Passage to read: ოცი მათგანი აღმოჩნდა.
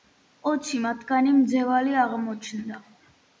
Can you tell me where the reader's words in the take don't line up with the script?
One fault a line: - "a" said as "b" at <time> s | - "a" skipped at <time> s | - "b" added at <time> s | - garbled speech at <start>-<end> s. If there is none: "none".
- "მძევალი" added at 1.4 s